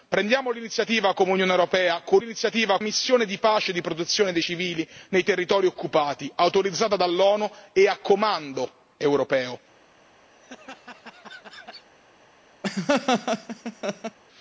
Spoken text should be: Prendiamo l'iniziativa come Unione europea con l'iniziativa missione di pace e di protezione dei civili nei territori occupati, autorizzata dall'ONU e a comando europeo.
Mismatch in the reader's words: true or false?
false